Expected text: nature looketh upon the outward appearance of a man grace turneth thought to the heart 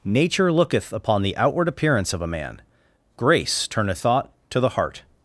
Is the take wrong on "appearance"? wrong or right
right